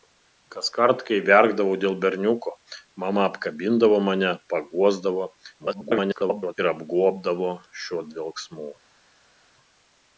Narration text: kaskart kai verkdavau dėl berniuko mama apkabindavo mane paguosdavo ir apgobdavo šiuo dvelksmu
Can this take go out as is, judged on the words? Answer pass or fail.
fail